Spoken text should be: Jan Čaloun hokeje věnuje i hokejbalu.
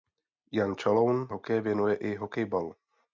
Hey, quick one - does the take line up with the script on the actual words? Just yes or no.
yes